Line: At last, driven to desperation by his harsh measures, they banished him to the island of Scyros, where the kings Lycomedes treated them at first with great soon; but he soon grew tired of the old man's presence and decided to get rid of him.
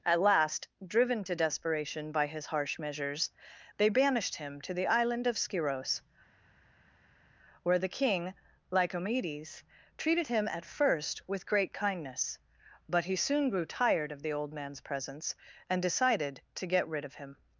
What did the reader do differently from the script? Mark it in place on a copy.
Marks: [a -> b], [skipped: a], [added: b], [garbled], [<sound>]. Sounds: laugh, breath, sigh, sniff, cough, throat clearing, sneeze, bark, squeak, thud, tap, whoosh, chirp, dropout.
At last, driven to desperation by his harsh measures, they banished him to the island of Scyros, where the [kings -> king] Lycomedes treated [them -> him] at first with great [soon; -> kindness] but he soon grew tired of the old man's presence and decided to get rid of him.